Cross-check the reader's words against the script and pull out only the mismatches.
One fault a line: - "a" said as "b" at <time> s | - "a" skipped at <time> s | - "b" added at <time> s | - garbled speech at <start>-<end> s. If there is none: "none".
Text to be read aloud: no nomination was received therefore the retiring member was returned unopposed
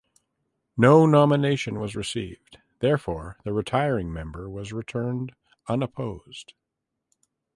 none